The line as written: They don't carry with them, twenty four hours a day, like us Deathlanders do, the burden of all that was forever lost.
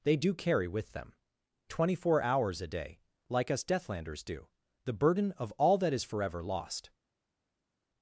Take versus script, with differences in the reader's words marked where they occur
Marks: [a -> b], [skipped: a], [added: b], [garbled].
They [don't -> do] carry with them, twenty four hours a day, like us Deathlanders do, the burden of all that [was -> is] forever lost.